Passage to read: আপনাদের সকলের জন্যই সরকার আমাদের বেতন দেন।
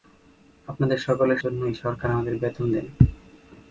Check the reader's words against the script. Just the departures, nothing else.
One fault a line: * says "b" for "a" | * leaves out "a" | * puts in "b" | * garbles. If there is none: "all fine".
all fine